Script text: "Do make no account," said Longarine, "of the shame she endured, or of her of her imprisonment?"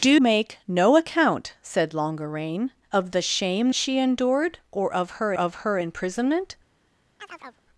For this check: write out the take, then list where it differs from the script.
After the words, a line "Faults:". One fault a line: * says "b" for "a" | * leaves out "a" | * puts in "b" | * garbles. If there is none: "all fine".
"Do make no account," said Longarine, "of the shame she endured, or of her of her imprisonment?"
Faults:
all fine